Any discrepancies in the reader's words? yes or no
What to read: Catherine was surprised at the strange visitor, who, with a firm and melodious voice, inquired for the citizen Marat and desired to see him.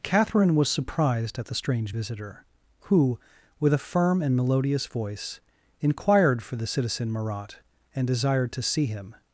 no